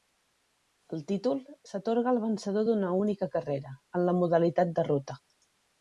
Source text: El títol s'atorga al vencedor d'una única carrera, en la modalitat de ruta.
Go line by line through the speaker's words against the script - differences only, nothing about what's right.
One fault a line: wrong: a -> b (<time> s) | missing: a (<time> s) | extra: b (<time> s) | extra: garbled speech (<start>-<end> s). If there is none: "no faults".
no faults